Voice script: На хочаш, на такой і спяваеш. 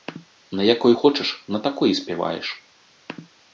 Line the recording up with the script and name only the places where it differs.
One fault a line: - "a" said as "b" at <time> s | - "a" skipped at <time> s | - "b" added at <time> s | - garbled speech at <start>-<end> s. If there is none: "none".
- "якой" added at 0.6 s